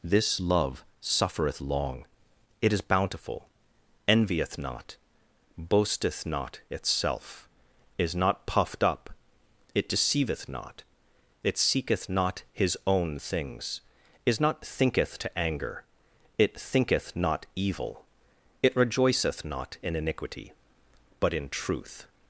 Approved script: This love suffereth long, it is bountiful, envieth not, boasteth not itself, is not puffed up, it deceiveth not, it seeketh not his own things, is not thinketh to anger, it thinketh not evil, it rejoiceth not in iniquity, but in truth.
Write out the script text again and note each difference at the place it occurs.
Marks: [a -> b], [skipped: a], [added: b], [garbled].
This love suffereth long, it is bountiful, envieth not, boasteth not itself, is not puffed up, it deceiveth not, it seeketh not his own things, is not thinketh to anger, it thinketh not evil, it rejoiceth not in iniquity, but in truth.